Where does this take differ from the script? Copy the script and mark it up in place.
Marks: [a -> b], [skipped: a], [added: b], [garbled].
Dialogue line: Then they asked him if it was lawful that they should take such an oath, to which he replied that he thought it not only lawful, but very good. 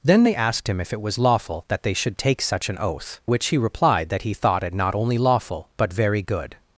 Then they asked him if it was lawful that they should take such an oath, [skipped: to] which he replied that he thought it not only lawful, but very good.